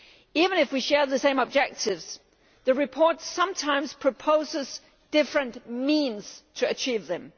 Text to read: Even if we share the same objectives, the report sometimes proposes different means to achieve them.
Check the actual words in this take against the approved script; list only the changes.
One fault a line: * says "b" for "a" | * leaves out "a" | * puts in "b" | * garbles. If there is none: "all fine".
all fine